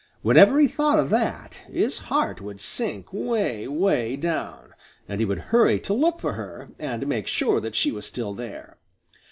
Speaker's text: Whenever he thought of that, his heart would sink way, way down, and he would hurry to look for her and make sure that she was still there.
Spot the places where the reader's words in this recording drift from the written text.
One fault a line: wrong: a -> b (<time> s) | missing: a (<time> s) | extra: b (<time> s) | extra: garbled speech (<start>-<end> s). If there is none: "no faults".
no faults